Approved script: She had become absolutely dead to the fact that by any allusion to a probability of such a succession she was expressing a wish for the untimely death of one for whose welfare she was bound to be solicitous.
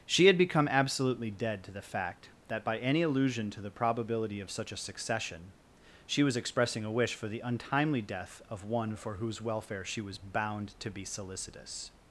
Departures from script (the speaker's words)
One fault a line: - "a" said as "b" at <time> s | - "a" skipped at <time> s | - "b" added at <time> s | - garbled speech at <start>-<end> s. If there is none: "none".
- "a" said as "the" at 3.6 s